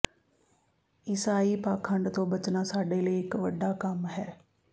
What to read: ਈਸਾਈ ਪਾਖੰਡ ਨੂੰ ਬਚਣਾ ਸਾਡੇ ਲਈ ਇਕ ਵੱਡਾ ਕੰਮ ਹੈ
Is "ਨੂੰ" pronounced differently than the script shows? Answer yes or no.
yes